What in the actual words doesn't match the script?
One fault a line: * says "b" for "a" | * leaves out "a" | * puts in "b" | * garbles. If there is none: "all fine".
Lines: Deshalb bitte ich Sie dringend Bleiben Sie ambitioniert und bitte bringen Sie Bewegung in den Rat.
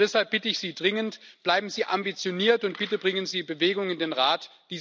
all fine